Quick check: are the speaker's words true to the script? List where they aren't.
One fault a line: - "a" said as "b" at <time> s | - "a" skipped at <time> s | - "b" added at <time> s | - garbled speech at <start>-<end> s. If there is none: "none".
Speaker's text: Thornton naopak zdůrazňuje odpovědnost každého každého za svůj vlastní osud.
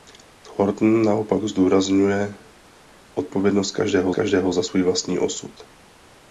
none